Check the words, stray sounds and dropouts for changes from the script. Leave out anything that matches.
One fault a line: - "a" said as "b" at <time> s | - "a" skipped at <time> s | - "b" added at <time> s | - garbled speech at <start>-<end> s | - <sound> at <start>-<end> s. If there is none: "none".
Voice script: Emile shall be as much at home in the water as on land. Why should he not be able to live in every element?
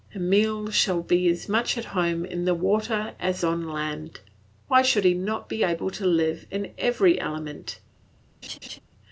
- laugh at 8.4-8.8 s